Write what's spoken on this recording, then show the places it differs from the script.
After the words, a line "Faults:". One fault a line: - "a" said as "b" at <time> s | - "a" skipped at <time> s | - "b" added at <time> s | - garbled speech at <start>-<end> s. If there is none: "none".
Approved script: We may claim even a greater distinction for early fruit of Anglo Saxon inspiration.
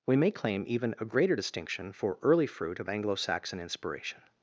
We may claim even a greater distinction for early fruit of Anglo Saxon inspiration.
Faults:
none